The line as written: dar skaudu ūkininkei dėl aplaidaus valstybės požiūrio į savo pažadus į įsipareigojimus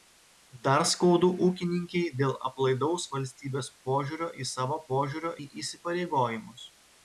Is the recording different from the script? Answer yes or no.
yes